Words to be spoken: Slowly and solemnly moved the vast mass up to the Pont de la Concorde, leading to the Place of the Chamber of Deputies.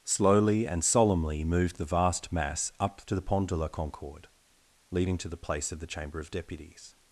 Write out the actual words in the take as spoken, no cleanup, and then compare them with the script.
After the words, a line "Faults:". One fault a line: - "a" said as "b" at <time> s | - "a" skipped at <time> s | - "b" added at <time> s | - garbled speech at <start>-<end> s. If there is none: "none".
Slowly and solemnly moved the vast mass up to the Pont de la Concorde, leading to the Place of the Chamber of Deputies.
Faults:
none